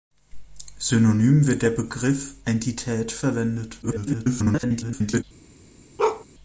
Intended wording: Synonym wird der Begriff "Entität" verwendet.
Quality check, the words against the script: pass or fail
fail